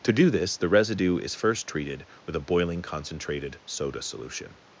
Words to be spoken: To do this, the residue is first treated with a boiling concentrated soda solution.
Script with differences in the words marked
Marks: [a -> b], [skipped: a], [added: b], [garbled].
To do this, the residue is first treated with a boiling concentrated soda solution.